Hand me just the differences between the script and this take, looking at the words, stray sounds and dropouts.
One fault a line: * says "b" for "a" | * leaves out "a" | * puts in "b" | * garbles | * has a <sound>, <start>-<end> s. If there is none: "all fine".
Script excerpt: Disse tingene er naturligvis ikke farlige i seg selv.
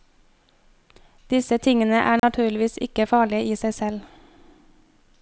* has a dropout, 2.2-2.2 s